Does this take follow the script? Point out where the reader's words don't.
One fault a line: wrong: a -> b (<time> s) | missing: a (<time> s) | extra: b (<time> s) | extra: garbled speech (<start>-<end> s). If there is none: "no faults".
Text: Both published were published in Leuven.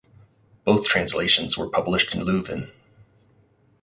wrong: published -> translations (0.9 s)